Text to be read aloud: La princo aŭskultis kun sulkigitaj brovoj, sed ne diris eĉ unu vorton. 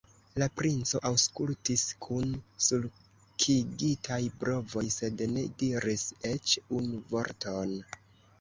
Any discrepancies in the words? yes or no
no